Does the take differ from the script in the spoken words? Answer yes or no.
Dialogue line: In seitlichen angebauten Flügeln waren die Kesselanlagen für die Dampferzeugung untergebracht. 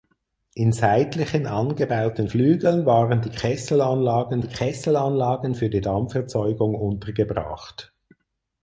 yes